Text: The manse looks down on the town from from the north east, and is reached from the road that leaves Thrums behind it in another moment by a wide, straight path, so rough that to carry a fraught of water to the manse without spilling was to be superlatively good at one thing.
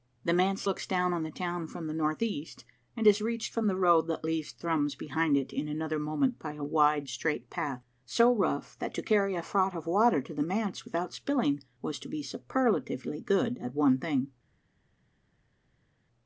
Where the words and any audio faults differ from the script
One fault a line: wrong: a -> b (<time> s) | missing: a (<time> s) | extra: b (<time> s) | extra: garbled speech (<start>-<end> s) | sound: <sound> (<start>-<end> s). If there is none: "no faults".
missing: from (1.9 s)